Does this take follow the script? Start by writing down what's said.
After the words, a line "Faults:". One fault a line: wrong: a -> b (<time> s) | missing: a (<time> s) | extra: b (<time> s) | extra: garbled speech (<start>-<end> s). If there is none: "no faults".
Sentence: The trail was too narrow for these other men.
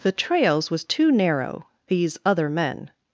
The trails was too narrow these other men.
Faults:
wrong: trail -> trails (0.1 s)
missing: for (1.7 s)